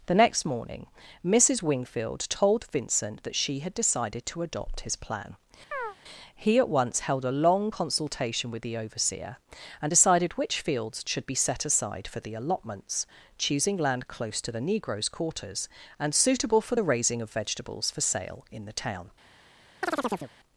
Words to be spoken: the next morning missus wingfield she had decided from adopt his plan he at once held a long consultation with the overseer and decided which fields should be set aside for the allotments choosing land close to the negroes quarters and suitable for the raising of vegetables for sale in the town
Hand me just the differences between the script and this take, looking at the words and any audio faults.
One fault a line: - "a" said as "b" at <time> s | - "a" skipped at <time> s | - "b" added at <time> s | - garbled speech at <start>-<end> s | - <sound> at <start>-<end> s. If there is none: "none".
- "told vincent that" added at 2.3 s
- "from" said as "to" at 4.3 s
- chirp at 5.7-6.0 s
- chirp at 19.8-20.3 s